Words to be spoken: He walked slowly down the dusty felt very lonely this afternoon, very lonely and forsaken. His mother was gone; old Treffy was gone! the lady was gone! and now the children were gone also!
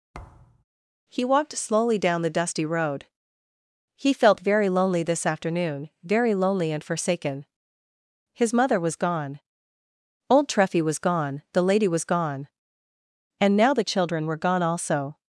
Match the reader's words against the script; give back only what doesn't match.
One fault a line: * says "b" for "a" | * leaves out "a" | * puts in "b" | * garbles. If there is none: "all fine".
* puts in "road He"